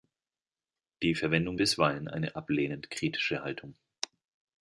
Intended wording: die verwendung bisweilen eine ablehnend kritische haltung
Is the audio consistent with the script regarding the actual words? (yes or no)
yes